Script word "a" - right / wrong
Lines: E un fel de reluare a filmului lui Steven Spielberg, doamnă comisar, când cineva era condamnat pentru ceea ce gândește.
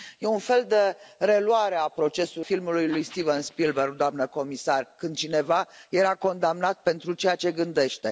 wrong